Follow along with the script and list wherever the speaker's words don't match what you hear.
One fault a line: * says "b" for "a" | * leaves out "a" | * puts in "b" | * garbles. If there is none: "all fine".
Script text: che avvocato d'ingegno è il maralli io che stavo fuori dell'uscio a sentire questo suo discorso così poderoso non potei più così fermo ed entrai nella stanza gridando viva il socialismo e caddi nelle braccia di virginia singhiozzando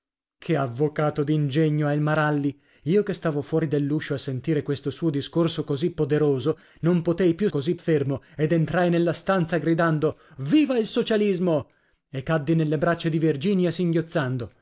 all fine